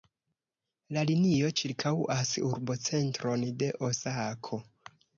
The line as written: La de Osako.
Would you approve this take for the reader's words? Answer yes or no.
no